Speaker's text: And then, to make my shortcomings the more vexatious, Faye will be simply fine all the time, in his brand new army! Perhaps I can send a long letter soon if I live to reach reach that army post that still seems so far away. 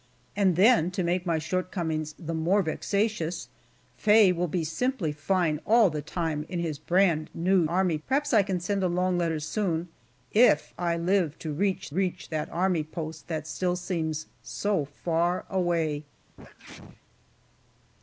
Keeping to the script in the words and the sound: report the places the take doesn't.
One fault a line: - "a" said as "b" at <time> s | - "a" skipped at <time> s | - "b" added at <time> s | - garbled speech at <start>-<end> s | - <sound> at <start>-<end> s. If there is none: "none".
- sneeze at 16.3-17.0 s